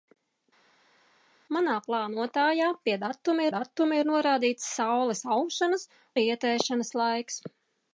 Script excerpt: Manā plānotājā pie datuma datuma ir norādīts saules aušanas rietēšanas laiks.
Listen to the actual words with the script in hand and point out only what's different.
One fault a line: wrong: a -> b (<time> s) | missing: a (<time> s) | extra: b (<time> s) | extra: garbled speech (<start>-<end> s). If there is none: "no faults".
no faults